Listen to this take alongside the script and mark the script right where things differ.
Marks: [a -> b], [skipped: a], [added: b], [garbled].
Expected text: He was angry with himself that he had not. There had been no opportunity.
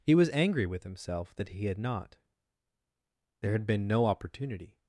He was angry with himself that he had not. There had been no opportunity.